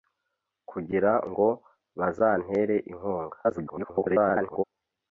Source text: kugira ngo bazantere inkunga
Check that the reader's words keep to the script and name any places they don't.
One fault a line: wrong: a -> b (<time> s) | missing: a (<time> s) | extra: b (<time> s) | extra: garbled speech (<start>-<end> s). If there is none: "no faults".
extra: garbled speech (3.4-4.6 s)